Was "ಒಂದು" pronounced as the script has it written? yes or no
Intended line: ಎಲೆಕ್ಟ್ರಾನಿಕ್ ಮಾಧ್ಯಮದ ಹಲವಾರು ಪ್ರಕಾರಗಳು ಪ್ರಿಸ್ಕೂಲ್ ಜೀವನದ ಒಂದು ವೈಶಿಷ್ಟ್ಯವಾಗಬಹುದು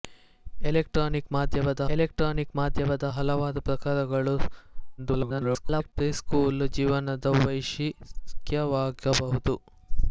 no